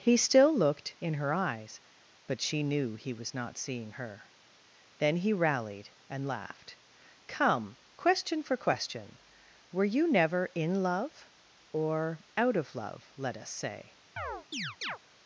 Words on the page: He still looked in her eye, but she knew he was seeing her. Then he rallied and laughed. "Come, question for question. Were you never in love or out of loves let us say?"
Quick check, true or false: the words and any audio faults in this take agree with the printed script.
false